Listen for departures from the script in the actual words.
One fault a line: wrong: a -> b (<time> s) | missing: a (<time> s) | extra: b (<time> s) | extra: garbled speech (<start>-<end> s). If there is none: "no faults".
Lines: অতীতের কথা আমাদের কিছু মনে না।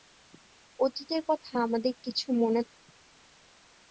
no faults